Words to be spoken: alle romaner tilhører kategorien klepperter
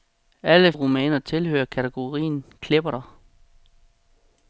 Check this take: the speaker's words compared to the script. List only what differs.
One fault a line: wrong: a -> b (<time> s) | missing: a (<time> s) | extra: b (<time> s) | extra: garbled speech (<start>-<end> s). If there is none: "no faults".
no faults